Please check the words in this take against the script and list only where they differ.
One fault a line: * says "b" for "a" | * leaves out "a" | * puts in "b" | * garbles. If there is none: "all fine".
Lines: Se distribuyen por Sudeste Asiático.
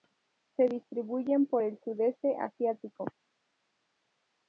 * puts in "el"